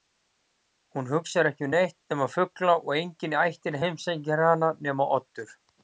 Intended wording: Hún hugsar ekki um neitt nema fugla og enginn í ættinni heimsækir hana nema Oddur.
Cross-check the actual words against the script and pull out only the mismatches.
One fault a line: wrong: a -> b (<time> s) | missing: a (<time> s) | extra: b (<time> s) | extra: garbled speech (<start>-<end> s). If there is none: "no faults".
no faults